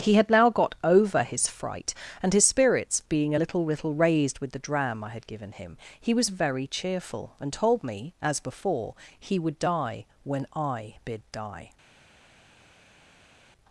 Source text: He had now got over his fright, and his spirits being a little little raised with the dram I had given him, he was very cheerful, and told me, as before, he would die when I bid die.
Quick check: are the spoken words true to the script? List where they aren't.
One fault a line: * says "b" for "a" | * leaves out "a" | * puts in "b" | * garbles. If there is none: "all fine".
all fine